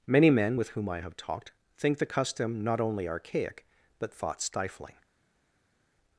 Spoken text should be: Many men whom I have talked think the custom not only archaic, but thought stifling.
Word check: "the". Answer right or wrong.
right